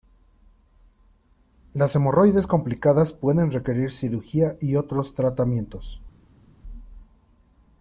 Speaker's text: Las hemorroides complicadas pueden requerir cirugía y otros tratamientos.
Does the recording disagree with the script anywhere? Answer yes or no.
no